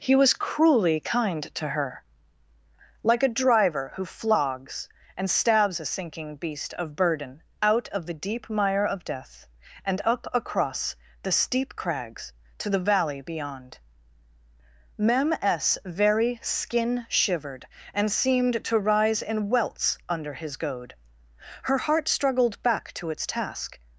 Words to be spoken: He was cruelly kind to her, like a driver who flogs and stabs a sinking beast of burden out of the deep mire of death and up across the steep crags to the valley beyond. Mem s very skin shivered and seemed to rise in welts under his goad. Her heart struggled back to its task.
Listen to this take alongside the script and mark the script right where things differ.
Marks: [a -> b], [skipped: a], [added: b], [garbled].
He was cruelly kind to her, like a driver who flogs and stabs a sinking beast of burden out of the deep mire of death and up across the steep crags to the valley beyond. Mem s very skin shivered and seemed to rise in welts under his goad. Her heart struggled back to its task.